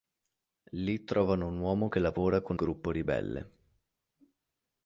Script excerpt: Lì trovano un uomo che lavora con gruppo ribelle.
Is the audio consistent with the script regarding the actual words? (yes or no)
yes